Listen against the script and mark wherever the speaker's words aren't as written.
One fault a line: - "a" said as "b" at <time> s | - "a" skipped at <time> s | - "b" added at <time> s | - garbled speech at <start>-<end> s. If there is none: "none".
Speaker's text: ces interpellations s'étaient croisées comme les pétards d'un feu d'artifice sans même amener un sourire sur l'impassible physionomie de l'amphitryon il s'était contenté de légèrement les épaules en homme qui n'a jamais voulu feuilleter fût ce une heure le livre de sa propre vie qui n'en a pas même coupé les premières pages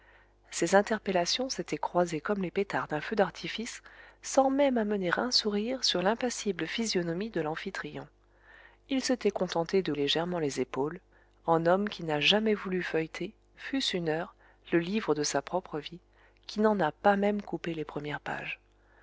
none